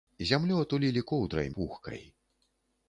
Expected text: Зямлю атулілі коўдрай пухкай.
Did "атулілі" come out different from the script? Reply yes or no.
no